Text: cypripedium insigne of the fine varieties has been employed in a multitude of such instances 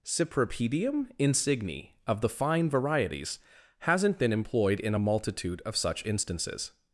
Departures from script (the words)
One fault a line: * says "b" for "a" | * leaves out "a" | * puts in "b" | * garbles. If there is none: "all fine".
* says "hasn't" for "has"